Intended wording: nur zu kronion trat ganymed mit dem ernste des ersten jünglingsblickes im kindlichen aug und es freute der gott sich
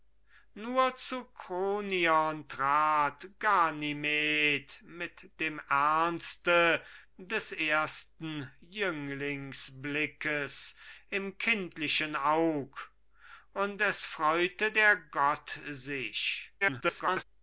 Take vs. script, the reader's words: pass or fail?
fail